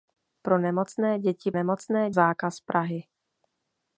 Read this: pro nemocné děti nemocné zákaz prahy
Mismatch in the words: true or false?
false